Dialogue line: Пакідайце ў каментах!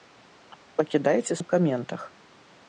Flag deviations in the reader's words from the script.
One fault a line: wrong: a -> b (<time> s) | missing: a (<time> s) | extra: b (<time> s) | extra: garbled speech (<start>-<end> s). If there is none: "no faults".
no faults